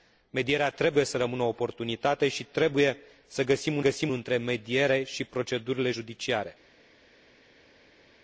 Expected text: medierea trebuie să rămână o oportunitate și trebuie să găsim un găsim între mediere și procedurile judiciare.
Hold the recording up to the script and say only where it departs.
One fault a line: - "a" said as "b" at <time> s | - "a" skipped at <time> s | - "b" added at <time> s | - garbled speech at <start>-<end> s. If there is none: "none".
none